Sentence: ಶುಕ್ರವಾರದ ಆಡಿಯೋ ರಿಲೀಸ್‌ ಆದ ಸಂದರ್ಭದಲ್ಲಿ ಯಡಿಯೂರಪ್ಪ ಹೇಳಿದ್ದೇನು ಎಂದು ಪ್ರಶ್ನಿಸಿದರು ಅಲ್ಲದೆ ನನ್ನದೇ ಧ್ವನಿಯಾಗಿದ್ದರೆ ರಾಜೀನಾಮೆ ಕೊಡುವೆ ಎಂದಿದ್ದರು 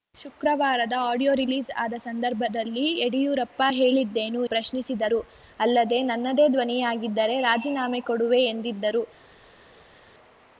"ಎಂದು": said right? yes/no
no